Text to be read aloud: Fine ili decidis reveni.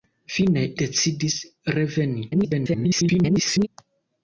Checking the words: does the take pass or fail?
fail